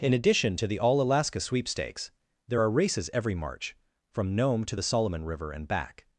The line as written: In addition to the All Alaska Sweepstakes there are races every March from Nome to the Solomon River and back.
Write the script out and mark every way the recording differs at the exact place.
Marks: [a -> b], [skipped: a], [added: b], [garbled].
In addition to the All Alaska Sweepstakes there are races every March from Nome to the Solomon River and back.